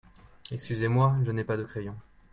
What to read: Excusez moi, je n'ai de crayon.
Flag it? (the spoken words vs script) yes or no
yes